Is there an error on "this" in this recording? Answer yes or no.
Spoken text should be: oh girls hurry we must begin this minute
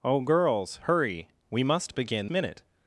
yes